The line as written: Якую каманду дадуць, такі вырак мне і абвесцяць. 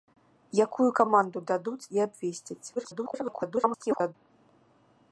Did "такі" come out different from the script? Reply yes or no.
yes